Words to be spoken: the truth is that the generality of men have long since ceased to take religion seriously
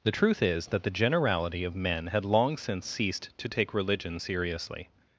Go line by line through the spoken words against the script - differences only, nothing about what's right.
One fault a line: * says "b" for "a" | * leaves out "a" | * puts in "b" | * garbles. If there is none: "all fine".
* says "had" for "have"